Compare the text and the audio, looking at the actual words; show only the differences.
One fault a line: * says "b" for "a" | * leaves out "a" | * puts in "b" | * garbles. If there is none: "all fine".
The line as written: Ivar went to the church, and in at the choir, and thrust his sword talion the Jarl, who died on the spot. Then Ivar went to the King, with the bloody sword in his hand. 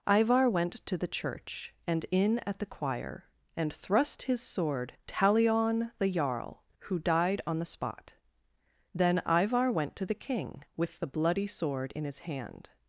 all fine